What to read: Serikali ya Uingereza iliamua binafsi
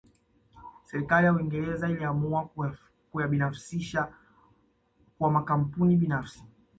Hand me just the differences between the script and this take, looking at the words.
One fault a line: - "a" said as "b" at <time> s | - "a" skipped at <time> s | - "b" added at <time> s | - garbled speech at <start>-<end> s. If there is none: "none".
- "kuyabinafsisha kwa makampuni" added at 3.1 s